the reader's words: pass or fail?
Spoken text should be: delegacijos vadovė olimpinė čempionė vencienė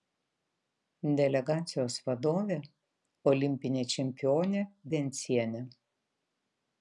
pass